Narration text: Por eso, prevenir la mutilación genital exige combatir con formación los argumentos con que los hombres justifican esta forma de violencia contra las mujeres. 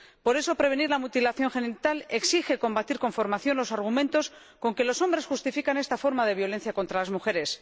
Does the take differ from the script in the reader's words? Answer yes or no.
no